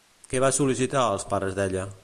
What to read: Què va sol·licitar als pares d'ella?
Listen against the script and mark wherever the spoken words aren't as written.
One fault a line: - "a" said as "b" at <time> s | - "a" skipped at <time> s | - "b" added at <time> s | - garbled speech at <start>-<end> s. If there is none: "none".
none